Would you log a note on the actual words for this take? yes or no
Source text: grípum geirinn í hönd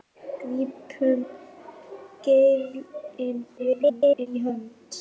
yes